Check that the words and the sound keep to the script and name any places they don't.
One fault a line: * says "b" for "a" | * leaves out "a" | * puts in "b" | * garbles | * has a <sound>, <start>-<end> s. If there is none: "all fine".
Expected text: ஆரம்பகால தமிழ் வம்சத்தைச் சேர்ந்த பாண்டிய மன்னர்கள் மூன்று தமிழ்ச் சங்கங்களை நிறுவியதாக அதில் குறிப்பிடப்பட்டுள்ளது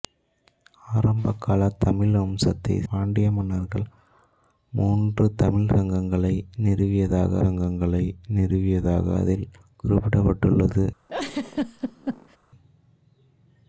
* leaves out "சேர்ந்த"
* puts in "சங்கங்களை நிறுவியதாக"
* has a laugh, 11.1-12.4 s